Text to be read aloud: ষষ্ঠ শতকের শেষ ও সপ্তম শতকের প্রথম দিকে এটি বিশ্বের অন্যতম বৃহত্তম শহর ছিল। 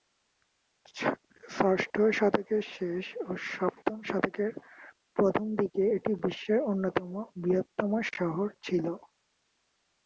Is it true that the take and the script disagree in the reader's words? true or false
false